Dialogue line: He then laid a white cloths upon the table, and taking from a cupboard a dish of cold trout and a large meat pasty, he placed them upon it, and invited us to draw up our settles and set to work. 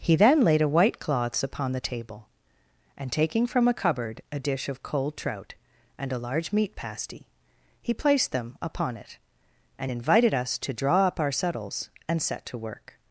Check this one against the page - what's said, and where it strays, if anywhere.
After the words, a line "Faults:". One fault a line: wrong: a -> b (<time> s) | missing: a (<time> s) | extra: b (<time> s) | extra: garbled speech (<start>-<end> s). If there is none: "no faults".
He then laid a white cloths upon the table, and taking from a cupboard a dish of cold trout and a large meat pasty, he placed them upon it, and invited us to draw up our settles and set to work.
Faults:
no faults